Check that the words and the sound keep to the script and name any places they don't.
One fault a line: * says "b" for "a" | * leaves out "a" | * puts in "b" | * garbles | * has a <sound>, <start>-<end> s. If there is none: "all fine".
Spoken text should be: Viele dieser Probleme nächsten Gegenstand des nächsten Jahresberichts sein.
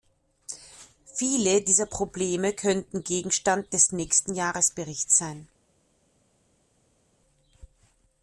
* says "könnten" for "nächsten"